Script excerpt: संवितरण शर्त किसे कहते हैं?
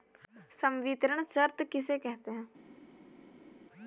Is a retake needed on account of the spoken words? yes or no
no